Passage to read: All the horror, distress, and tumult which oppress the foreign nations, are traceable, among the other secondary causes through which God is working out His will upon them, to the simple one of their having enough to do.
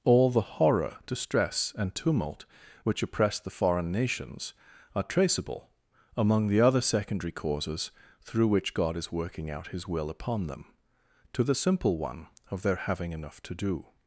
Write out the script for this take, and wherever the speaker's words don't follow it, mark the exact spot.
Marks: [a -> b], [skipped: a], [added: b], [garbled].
All the horror, distress, and tumult which oppress the foreign nations, are traceable, among the other secondary causes through which God is working out His will upon them, to the simple one of their having enough to do.